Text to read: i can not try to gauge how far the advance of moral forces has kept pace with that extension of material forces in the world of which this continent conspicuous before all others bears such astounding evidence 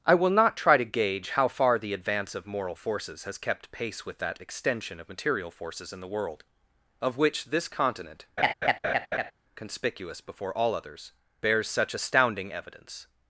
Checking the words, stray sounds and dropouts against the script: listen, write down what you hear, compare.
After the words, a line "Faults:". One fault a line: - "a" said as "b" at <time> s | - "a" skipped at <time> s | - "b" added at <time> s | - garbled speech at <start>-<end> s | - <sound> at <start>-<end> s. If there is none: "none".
i will not try to gauge how far the advance of moral forces has kept pace with that extension of material forces in the world of which this continent conspicuous before all others bears such astounding evidence
Faults:
- "can" said as "will" at 0.1 s
- laugh at 8.4-9.3 s